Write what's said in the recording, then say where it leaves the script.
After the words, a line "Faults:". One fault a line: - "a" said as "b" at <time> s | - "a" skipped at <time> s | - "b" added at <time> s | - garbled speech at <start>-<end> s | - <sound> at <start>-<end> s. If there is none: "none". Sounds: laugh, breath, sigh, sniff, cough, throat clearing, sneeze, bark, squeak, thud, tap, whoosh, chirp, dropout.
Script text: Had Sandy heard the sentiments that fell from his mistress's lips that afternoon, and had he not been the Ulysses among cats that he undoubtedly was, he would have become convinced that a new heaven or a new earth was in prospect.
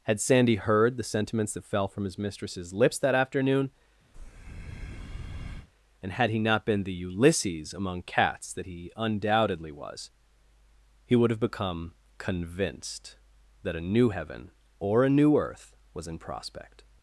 Had Sandy heard the sentiments that fell from his mistress's lips that afternoon, and had he not been the Ulysses among cats that he undoubtedly was, he would have become convinced that a new heaven or a new earth was in prospect.
Faults:
- breath at 4.1-5.7 s